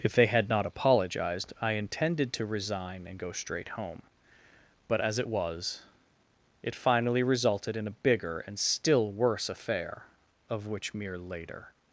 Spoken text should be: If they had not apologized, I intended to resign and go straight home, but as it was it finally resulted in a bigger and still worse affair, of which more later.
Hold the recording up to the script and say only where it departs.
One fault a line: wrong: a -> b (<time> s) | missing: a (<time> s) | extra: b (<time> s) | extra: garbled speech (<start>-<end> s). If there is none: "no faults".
wrong: more -> mere (10.9 s)